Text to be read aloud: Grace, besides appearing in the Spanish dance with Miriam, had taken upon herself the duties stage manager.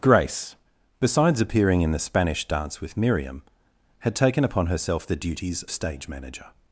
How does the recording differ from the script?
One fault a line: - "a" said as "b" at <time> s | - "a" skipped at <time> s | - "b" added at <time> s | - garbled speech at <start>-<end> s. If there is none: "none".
none